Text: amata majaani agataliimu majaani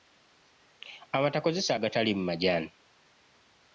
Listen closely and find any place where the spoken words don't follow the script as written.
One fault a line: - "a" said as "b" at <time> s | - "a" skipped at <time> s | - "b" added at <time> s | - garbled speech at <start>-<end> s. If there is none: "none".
- "majaani" said as "kozesa" at 1.4 s